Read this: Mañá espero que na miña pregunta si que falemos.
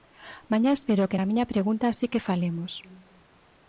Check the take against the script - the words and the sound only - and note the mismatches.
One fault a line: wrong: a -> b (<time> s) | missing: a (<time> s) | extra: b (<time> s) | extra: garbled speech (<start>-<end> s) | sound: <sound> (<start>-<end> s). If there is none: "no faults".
no faults